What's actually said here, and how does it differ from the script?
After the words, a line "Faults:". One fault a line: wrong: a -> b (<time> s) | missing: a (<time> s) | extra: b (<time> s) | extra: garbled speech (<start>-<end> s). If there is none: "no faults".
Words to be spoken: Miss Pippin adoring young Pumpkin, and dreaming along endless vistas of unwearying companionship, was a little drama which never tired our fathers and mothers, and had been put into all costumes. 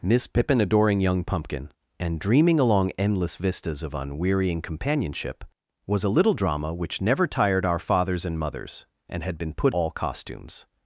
Miss Pippin adoring young Pumpkin, and dreaming along endless vistas of unwearying companionship, was a little drama which never tired our fathers and mothers, and had been put all costumes.
Faults:
missing: into (9.8 s)